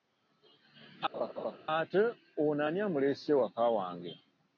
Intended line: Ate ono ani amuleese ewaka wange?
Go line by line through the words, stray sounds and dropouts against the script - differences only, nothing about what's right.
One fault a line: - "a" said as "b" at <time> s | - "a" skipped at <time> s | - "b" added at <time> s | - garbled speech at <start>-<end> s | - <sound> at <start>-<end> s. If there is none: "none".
- laugh at 1.1-1.6 s